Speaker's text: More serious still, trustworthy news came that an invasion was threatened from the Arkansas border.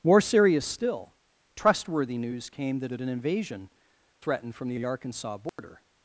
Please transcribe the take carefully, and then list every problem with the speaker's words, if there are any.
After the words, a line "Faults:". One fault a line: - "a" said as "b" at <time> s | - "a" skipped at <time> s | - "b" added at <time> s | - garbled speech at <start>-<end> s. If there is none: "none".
More serious still, trustworthy news came that that an invasion threatened from the the Arkansas border.
Faults:
- "that" added at 2.9 s
- "was" skipped at 3.7 s
- "the" added at 4.7 s